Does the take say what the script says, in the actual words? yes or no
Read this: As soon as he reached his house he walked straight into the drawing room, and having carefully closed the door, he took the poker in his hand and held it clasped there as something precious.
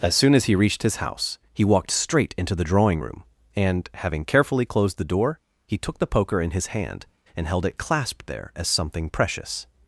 yes